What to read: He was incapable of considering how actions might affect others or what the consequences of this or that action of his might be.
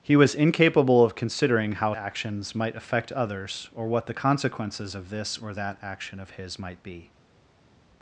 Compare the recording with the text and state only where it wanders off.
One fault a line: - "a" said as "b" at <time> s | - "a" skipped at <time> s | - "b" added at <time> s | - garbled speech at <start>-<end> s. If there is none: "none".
none